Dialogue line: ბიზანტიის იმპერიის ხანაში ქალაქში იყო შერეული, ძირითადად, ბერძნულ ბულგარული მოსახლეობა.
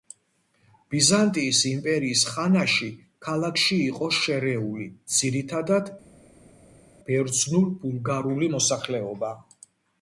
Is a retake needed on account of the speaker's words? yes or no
no